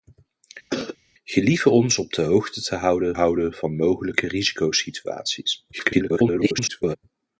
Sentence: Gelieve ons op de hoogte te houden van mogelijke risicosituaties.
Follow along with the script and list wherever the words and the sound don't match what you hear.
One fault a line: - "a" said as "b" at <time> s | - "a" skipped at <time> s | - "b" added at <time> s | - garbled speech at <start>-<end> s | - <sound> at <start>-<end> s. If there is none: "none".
- cough at 0.7-1.0 s
- "houden" added at 3.1 s
- garbled speech at 5.7-7.0 s